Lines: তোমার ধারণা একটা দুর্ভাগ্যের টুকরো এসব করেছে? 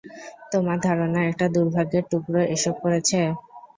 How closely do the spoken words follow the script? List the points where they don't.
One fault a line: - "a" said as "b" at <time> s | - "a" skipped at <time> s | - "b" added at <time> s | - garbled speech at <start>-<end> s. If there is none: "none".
none